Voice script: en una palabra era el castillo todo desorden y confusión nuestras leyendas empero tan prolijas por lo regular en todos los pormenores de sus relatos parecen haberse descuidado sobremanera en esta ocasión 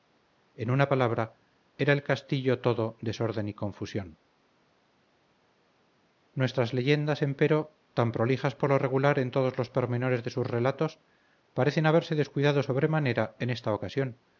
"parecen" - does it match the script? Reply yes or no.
yes